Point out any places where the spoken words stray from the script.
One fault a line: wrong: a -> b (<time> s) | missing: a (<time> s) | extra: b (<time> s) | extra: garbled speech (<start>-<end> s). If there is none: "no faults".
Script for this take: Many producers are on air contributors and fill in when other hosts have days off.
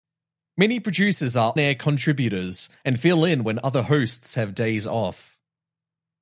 missing: on (1.5 s)